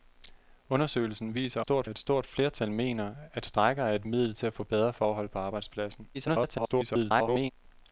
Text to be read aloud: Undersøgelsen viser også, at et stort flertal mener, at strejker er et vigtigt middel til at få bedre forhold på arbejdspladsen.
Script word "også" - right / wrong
wrong